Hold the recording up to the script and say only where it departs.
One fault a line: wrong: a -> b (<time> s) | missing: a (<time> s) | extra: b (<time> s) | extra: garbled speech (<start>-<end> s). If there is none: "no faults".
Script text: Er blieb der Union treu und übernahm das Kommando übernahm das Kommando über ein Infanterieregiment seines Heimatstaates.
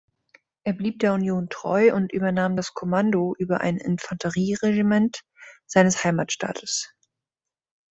missing: übernahm das Kommando (3.3 s)